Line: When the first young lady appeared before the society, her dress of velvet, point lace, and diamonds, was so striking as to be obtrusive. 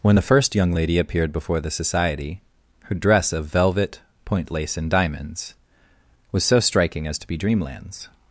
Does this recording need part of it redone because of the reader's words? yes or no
yes